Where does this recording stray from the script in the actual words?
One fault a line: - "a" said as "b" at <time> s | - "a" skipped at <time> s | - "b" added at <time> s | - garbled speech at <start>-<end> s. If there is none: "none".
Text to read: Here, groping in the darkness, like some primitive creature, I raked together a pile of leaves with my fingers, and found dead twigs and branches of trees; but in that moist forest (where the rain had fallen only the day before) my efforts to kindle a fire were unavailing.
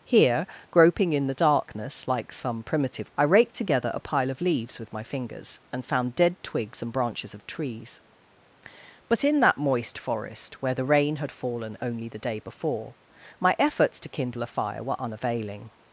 - "creature" skipped at 3.1 s